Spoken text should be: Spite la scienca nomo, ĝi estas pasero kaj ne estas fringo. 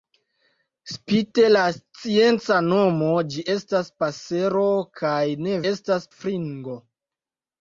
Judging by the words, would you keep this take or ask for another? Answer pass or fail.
pass